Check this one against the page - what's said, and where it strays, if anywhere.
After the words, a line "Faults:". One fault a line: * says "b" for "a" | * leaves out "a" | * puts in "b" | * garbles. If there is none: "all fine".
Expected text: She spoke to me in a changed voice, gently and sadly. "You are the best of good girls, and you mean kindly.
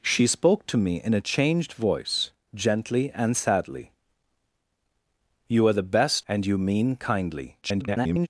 She spoke to me in a changed voice, gently and sadly. "You are the best and you mean kindly. [garbled]
Faults:
* leaves out "of good girls"
* garbles